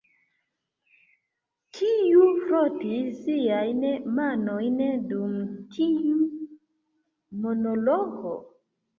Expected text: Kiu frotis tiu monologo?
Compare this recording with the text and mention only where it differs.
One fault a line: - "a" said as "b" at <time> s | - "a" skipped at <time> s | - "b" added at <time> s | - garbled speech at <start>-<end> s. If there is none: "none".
- "siajn manojn dum" added at 3.2 s